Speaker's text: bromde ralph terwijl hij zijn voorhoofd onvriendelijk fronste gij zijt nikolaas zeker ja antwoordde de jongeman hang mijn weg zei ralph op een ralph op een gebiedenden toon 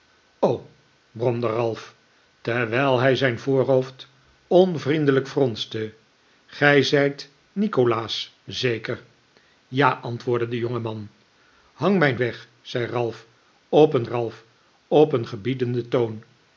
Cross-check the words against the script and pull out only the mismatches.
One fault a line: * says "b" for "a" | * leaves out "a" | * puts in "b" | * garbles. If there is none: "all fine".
all fine